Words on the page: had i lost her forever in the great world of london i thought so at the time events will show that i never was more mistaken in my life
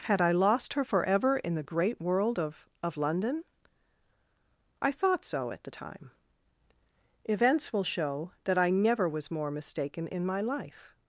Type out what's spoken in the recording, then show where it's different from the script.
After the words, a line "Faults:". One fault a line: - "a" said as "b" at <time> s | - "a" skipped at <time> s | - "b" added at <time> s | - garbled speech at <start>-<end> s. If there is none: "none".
had i lost her forever in the great world of of london i thought so at the time events will show that i never was more mistaken in my life
Faults:
- "of" added at 2.8 s